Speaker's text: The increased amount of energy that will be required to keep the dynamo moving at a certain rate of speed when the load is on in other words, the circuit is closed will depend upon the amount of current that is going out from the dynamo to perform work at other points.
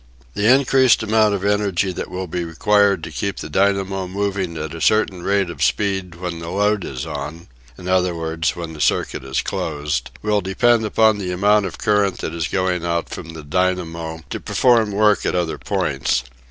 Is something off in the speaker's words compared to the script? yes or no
yes